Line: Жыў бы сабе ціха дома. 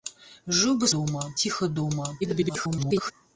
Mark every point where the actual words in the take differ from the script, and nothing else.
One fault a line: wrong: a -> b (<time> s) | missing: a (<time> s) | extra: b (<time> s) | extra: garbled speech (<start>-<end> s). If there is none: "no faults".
wrong: сабе -> дома (1.0 s)
extra: garbled speech (2.2-3.1 s)